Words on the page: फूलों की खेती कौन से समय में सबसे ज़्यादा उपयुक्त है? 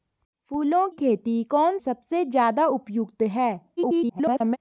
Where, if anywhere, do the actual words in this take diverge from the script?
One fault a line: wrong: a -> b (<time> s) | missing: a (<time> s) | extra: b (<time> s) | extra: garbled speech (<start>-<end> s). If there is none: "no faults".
missing: की (0.9 s)
missing: से समय में (1.8 s)
extra: garbled speech (3.8-4.6 s)